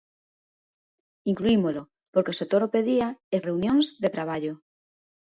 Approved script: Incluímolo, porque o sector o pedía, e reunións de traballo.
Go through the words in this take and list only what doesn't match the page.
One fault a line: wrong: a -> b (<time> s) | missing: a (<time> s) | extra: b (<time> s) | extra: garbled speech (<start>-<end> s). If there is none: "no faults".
no faults